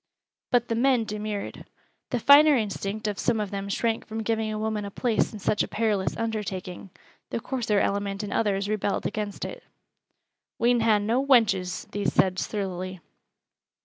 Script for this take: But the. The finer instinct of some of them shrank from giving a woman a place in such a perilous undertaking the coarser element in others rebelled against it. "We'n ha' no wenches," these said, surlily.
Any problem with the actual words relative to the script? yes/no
yes